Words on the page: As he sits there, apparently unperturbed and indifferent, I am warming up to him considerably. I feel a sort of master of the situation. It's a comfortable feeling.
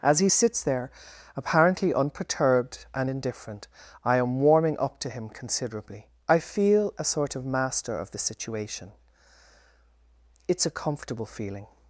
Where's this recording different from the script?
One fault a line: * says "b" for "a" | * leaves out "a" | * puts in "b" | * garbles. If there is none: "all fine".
all fine